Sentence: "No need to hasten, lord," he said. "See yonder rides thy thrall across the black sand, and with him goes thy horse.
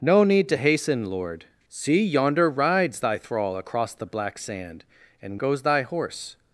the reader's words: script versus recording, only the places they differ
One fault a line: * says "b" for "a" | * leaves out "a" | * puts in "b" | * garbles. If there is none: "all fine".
* leaves out "he said"
* leaves out "with him"